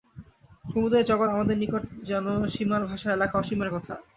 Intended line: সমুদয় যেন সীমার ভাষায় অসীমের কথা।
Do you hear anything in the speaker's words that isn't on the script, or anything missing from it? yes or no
yes